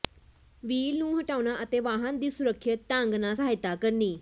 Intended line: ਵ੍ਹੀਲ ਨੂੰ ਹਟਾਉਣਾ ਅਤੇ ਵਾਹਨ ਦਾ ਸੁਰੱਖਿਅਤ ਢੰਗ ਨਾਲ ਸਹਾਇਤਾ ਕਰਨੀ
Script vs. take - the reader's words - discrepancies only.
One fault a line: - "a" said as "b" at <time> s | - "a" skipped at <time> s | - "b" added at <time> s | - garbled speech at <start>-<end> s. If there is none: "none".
- "ਦਾ" said as "ਦੀ" at 2.2 s